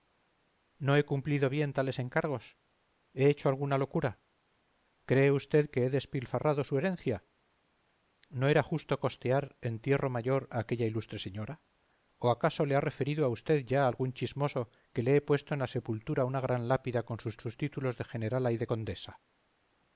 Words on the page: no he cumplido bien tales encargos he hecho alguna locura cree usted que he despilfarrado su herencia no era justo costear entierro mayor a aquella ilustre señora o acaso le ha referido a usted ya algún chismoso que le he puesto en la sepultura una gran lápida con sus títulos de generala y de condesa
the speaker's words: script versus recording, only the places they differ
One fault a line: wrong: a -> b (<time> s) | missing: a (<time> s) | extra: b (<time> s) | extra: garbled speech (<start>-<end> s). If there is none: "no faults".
extra: sus (17.4 s)